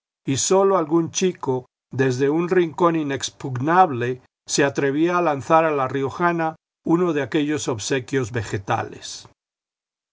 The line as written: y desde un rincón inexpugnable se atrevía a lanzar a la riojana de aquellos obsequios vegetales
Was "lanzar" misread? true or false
false